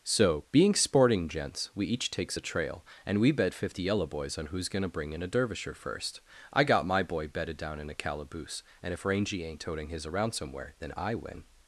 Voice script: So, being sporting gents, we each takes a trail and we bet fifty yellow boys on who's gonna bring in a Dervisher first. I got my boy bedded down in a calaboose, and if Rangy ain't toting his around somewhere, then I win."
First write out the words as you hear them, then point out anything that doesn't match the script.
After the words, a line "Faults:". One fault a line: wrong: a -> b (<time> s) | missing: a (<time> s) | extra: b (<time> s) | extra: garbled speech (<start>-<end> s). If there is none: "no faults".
So, being sporting gents, we each takes a trail and we bet fifty yellow boys on who's gonna bring in a Dervisher first. I got my boy bedded down in a calaboose, and if Rangy ain't toting his around somewhere, then I win."
Faults:
no faults